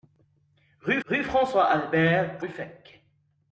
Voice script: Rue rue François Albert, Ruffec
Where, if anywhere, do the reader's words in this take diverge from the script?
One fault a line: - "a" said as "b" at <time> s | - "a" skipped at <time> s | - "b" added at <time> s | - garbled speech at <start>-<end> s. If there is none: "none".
none